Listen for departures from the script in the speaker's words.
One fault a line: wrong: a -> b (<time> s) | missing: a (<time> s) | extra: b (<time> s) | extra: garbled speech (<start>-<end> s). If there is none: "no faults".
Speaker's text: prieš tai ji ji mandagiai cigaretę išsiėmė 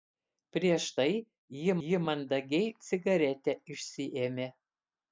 no faults